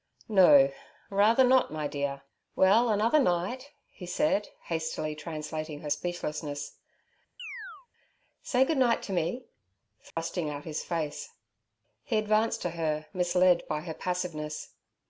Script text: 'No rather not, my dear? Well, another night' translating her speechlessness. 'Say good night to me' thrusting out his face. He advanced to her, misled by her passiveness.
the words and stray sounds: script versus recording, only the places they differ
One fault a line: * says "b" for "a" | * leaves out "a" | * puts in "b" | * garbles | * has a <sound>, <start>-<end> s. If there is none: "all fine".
* puts in "he said hastily"
* has a chirp, 7.4-7.9 s
* has a dropout, 10.1-10.2 s